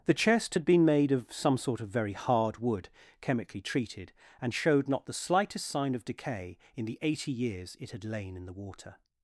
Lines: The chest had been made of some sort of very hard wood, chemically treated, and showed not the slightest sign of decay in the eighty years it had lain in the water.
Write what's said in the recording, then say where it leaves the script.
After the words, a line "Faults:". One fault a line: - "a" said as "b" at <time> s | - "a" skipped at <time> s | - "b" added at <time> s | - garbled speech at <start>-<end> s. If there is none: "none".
The chest had been made of some sort of very hard wood, chemically treated, and showed not the slightest sign of decay in the eighty years it had lain in the water.
Faults:
none